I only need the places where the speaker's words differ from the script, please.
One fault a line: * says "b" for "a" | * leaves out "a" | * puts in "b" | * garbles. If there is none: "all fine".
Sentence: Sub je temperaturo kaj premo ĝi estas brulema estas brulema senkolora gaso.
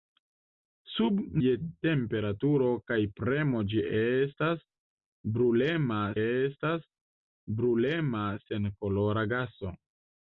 all fine